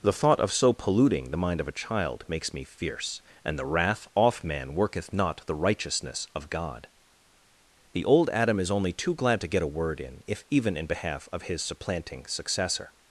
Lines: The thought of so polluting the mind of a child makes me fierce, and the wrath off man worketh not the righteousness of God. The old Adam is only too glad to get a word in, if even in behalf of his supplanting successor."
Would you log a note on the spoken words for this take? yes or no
no